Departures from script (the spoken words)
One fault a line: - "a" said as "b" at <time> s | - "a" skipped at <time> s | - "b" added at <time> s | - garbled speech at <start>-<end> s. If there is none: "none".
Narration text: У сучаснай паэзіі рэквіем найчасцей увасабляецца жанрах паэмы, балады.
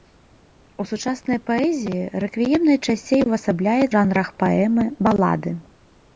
none